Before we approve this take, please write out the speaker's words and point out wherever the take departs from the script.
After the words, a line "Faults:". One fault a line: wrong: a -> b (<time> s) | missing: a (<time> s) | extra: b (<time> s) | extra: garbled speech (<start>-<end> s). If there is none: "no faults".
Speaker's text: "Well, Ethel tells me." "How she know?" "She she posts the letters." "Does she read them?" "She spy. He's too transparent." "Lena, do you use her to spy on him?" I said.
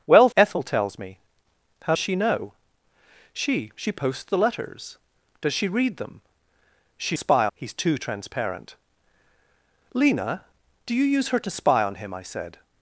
"Well, Ethel tells me." "How she know?" "She she posts the letters." "Does she read them?" "She spy. He's too transparent." "Lena, do you use her to spy on him?" I said.
Faults:
no faults